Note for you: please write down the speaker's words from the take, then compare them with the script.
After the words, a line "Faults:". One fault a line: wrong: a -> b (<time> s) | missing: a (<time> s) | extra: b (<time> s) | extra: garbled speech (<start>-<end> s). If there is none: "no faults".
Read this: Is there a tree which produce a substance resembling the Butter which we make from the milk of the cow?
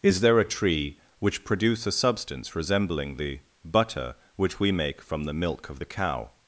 Is there a tree which produce a substance resembling the Butter which we make from the milk of the cow?
Faults:
no faults